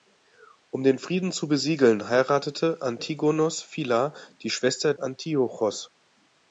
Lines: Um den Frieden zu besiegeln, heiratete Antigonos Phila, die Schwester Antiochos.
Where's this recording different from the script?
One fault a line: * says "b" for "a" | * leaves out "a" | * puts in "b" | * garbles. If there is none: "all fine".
all fine